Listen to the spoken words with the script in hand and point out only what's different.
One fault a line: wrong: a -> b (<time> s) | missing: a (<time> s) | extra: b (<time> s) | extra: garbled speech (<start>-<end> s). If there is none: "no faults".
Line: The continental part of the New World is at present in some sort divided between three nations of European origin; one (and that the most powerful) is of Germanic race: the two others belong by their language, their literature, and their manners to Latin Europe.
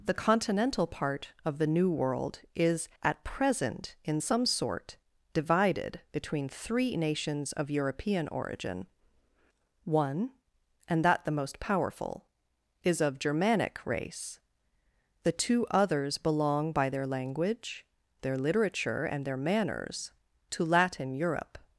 no faults